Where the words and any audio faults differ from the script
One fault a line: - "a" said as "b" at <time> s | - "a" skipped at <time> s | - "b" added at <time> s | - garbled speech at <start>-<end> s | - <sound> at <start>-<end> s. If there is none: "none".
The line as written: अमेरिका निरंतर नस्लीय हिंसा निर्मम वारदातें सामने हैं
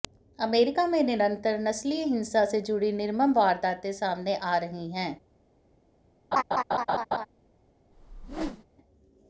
- "में" added at 0.9 s
- "से जुड़ी" added at 2.5 s
- "आ रही" added at 4.3 s
- laugh at 6.3-7.3 s
- whoosh at 7.9-8.6 s